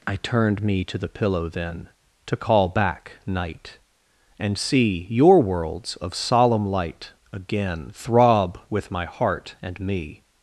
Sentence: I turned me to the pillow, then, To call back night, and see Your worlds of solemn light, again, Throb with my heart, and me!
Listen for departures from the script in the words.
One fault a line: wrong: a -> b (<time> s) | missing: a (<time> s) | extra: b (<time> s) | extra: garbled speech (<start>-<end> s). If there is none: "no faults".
no faults